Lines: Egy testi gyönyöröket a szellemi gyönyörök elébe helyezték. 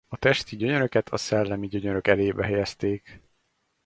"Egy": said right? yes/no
no